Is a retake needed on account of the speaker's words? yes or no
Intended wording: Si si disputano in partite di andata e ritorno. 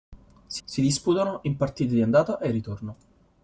no